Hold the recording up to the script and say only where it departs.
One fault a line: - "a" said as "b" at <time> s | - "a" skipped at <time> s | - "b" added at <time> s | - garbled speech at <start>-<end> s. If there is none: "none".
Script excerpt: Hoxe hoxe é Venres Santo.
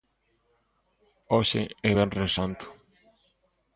- "hoxe" skipped at 1.6 s